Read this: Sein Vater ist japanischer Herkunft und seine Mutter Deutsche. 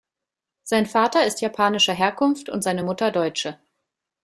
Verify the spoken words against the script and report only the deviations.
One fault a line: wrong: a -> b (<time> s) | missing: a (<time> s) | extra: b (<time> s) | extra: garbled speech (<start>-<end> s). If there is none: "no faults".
no faults